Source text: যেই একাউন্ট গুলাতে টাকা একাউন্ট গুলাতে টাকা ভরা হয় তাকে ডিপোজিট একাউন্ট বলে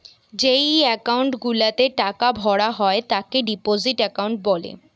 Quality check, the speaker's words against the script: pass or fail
fail